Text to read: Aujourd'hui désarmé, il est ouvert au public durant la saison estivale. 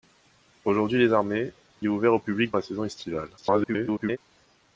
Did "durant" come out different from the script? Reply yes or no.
yes